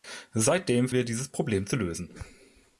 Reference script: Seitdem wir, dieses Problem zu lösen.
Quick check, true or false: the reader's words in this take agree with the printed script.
true